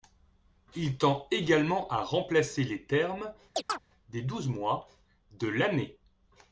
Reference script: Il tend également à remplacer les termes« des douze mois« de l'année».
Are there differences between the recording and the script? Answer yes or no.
no